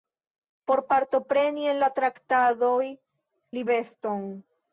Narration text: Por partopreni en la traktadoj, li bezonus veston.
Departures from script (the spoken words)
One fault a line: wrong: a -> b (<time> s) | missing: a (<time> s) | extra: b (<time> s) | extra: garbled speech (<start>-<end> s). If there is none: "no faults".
missing: bezonus (3.7 s)